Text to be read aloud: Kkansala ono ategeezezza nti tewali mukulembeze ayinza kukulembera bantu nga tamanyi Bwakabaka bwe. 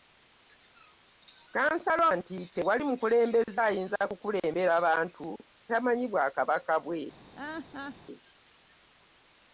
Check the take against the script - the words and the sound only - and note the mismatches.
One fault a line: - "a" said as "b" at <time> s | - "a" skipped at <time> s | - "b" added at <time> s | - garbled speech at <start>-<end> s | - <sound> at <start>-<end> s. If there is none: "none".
- "ono ategeezezza" skipped at 2.0 s
- "nga" skipped at 5.3 s
- laugh at 7.3-8.0 s